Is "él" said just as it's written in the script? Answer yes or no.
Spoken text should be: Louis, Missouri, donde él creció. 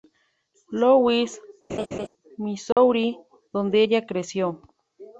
no